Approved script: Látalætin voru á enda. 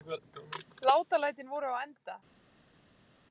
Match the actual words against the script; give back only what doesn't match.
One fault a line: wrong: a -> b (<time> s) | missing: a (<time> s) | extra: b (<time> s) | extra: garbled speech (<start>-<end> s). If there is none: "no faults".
no faults